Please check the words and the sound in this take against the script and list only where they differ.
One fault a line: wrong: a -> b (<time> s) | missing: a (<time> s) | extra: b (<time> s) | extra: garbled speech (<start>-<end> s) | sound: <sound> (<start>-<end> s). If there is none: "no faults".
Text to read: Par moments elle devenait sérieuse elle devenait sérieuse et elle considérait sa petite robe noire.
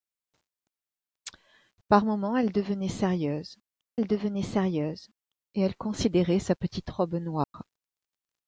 sound: dropout (7.4-7.5 s)